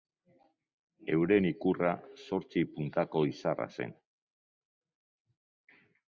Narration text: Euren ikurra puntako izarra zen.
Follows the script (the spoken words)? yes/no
no